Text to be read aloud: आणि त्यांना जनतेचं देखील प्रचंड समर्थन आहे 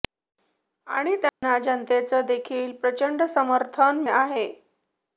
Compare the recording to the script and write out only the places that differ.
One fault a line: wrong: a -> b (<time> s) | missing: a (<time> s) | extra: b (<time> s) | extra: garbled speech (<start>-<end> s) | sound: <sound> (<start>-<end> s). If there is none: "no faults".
sound: dropout (1.3-1.4 s)